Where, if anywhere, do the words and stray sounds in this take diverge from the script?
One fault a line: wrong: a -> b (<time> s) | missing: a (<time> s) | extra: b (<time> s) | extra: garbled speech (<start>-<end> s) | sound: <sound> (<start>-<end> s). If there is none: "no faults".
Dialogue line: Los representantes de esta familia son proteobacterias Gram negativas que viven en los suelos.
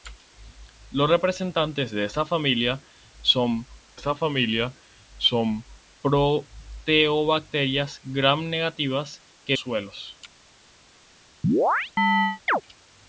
extra: esta familia son (3.9 s)
missing: viven en los (9.6 s)
sound: chirp (11.4-12.6 s)